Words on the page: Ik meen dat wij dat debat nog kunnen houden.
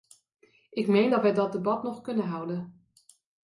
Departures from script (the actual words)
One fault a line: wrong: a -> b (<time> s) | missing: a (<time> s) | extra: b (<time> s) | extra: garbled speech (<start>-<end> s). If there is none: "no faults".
no faults